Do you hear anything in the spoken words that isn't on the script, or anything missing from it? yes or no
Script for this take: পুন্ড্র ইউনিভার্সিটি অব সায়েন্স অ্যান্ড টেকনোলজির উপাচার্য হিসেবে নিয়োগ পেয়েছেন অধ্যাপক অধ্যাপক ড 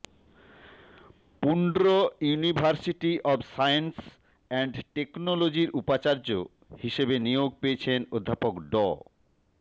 yes